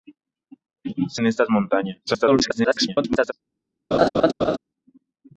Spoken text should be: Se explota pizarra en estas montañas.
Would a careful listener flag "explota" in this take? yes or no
yes